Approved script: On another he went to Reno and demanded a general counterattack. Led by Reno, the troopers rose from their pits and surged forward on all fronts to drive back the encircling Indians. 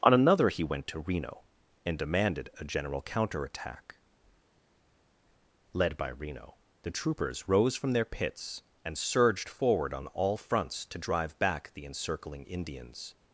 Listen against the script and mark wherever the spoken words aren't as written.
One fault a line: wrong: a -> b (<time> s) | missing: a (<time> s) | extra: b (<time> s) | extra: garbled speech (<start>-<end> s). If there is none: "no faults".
no faults